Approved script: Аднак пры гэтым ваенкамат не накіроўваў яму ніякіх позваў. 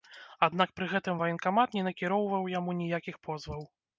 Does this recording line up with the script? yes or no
yes